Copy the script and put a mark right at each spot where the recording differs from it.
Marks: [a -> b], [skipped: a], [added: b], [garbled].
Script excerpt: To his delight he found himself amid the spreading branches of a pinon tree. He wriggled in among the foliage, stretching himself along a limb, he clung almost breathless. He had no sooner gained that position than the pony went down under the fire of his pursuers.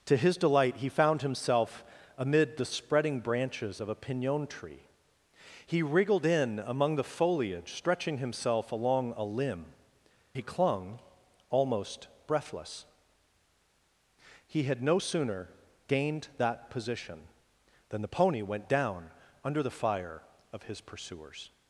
To his delight he found himself amid the spreading branches of a pinon tree. He wriggled in among the foliage, stretching himself along a limb, he clung almost breathless. He had no sooner gained that position than the pony went down under the fire of his pursuers.